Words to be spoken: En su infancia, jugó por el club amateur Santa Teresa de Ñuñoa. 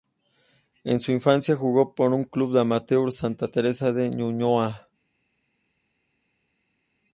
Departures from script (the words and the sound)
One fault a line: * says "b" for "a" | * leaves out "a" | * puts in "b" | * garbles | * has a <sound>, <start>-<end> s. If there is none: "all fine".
all fine